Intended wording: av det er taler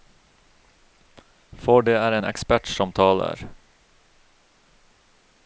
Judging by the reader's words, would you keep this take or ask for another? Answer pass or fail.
fail